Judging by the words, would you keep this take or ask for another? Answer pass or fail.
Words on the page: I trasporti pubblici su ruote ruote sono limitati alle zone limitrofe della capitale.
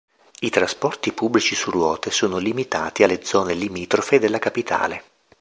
fail